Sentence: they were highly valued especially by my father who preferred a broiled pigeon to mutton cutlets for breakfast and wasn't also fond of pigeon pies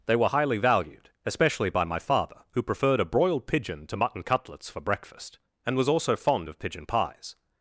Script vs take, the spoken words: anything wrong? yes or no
yes